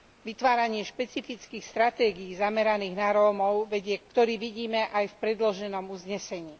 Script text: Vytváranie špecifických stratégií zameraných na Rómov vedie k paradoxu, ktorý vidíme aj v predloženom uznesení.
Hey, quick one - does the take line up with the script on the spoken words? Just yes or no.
no